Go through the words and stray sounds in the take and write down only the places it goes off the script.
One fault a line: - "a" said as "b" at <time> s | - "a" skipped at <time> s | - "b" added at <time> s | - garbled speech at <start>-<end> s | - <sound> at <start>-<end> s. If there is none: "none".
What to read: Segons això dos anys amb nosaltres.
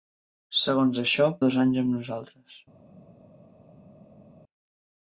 none